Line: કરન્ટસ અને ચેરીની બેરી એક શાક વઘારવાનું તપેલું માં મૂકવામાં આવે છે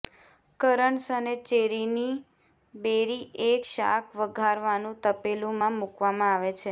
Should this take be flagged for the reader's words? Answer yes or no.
no